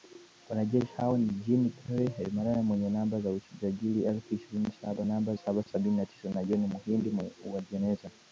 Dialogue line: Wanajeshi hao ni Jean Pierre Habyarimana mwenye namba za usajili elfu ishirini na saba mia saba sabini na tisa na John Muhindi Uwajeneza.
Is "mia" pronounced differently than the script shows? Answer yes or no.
yes